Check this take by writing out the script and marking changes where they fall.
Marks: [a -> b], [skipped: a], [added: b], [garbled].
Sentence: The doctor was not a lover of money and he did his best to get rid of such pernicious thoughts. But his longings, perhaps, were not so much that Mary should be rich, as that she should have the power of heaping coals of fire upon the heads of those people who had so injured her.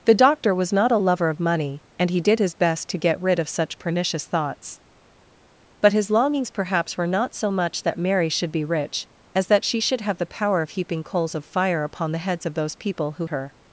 The doctor was not a lover of money and he did his best to get rid of such pernicious thoughts. But his longings, perhaps, were not so much that Mary should be rich, as that she should have the power of heaping coals of fire upon the heads of those people who [skipped: had so injured] her.